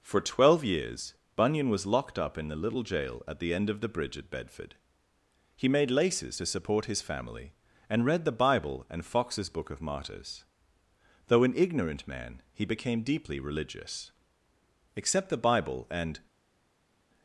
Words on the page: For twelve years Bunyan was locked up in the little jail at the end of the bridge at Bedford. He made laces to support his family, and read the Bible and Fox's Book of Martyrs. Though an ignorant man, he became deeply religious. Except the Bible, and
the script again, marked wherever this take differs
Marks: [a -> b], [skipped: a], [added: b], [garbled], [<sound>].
For twelve years Bunyan was locked up in the little jail at the end of the bridge at Bedford. He made laces to support his family, and read the Bible and Fox's Book of Martyrs. Though an ignorant man, he became deeply religious. Except the Bible, and